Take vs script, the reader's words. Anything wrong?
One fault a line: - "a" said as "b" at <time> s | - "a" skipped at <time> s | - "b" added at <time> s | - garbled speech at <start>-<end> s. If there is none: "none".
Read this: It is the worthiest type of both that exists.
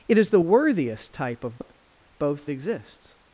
- "that" skipped at 2.5 s